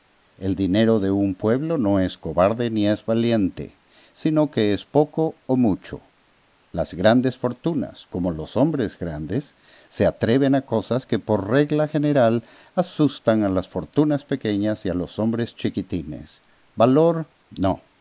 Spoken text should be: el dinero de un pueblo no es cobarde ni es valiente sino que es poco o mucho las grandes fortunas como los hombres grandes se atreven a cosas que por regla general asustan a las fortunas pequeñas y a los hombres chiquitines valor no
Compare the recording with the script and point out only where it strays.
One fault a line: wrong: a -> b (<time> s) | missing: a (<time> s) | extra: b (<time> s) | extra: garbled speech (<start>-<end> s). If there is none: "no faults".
no faults